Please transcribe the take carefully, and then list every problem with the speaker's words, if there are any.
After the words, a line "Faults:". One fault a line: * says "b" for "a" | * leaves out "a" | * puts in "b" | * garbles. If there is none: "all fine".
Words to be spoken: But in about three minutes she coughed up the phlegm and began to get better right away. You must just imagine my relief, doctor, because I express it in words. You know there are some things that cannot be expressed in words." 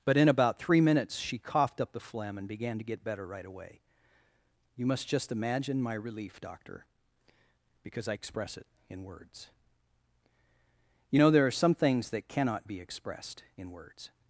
But in about three minutes she coughed up the phlegm and began to get better right away. You must just imagine my relief, doctor, because I express it in words. You know there are some things that cannot be expressed in words."
Faults:
all fine